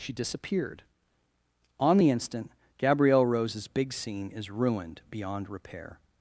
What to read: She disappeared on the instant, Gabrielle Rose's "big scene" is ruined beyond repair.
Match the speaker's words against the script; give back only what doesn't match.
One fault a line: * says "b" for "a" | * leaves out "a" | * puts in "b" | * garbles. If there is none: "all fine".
all fine